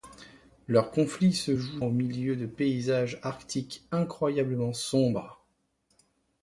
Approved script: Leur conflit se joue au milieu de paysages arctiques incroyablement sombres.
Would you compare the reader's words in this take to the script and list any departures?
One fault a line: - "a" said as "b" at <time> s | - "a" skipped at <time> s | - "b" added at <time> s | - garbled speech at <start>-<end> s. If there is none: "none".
none